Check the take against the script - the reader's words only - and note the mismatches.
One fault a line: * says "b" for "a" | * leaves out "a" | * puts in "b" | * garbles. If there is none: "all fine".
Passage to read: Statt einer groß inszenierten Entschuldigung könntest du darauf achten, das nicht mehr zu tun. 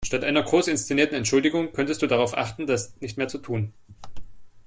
all fine